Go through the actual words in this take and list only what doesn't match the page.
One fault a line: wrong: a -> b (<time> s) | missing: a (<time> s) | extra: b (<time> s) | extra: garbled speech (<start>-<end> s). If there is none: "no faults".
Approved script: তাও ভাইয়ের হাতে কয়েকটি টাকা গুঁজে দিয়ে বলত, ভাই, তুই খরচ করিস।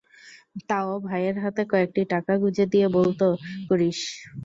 missing: ভাই তুই খরচ (3.2 s)